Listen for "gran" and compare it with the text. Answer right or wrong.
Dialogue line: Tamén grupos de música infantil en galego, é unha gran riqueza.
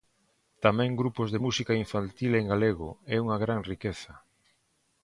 right